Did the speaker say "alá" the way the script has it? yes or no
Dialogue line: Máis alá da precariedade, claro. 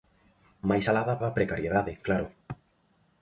yes